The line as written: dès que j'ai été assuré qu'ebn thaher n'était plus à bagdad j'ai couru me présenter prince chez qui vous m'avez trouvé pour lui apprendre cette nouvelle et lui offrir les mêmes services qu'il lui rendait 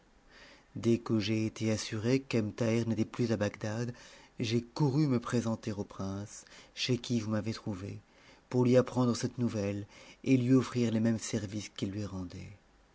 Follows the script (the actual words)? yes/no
no